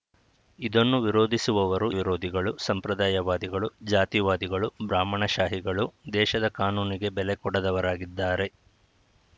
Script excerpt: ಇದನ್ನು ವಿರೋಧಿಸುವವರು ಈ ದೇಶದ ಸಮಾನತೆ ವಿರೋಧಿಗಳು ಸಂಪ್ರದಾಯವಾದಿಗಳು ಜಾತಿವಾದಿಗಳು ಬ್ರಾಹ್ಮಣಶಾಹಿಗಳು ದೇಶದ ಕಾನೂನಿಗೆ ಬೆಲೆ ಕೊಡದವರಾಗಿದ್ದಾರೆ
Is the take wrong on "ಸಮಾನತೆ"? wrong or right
wrong